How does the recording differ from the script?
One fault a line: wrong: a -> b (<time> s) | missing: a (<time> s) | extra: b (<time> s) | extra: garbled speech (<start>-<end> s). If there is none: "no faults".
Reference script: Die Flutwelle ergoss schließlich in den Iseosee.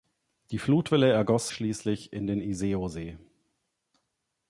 no faults